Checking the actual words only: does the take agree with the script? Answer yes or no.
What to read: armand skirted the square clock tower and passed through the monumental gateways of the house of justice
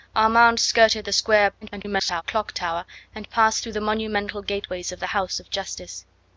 no